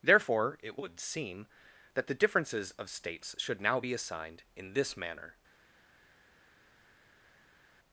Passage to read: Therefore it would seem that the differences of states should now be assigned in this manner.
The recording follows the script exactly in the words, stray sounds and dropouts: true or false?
true